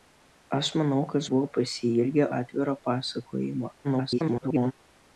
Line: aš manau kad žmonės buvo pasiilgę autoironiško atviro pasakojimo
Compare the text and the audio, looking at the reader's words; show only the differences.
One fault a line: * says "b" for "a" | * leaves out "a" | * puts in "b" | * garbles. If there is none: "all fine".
* leaves out "žmonės"
* leaves out "autoironiško"
* garbles